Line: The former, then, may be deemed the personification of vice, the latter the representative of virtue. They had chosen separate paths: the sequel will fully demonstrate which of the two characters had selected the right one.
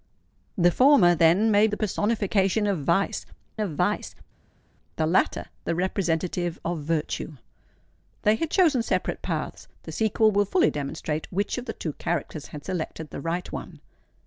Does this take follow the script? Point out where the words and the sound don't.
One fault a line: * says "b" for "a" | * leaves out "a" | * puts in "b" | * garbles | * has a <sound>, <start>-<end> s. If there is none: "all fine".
* says "the personification of vice" for "be deemed the personification"